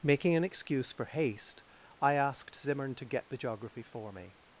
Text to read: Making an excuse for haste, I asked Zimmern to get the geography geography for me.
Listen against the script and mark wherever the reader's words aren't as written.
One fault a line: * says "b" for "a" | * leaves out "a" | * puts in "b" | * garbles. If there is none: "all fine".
* leaves out "geography"